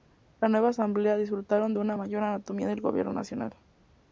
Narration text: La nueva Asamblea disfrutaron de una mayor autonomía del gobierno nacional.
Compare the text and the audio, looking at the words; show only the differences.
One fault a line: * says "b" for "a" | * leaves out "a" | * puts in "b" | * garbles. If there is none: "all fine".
all fine